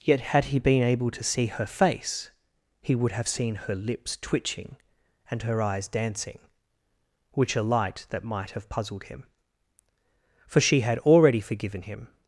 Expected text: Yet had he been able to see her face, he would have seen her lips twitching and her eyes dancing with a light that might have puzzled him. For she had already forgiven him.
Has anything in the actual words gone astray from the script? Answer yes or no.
yes